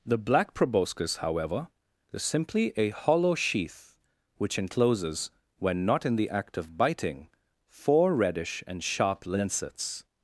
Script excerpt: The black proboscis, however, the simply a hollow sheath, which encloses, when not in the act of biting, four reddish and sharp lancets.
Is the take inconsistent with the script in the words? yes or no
yes